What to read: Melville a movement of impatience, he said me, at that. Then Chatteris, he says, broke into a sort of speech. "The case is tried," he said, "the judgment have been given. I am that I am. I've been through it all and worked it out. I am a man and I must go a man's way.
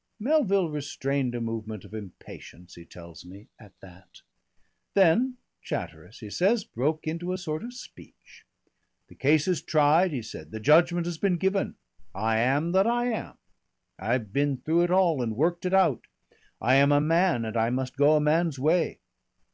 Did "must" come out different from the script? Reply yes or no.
no